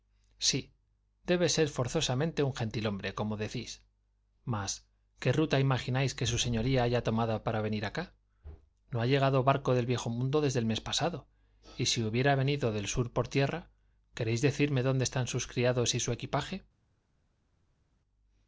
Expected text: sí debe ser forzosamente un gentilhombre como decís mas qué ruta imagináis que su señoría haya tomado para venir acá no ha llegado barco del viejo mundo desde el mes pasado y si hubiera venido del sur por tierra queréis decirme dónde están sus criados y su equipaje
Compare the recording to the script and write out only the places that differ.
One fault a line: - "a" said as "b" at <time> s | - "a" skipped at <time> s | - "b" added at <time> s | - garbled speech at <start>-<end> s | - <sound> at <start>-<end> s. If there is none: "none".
none